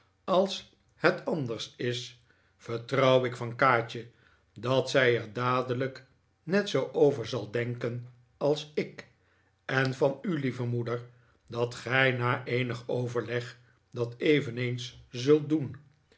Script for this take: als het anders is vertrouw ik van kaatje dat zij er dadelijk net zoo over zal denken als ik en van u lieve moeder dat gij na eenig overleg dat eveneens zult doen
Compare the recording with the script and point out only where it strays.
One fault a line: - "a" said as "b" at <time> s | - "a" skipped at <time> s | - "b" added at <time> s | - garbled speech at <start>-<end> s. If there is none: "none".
none